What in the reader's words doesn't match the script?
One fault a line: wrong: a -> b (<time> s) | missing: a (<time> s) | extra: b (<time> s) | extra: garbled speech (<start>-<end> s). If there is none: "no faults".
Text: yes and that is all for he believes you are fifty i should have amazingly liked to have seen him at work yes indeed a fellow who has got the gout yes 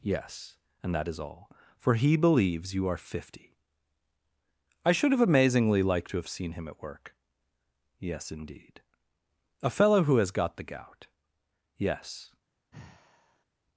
no faults